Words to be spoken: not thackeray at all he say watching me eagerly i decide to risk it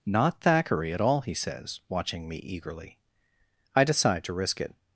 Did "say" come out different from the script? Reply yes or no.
yes